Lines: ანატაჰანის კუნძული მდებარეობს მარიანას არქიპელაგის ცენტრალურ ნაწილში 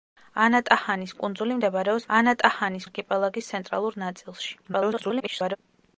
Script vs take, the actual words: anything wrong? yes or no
yes